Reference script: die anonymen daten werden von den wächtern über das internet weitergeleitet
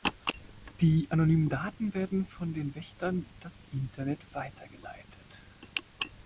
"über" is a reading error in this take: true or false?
true